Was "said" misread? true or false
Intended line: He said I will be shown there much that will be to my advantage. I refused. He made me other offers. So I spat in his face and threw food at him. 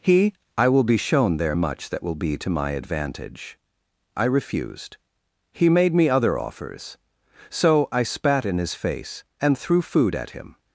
true